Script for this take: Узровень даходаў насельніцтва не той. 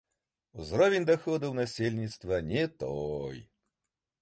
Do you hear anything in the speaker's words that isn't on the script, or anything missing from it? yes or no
no